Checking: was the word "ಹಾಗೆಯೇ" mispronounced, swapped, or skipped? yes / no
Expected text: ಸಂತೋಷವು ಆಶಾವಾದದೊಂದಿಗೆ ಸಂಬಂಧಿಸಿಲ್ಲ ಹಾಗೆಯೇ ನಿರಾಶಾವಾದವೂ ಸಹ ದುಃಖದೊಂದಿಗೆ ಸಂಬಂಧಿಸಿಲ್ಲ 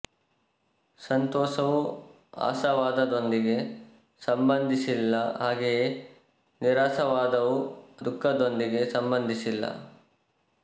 no